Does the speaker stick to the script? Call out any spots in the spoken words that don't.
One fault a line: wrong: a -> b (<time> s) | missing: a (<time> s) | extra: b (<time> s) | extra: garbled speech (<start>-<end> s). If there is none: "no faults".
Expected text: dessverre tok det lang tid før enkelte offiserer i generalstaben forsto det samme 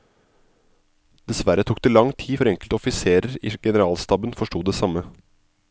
no faults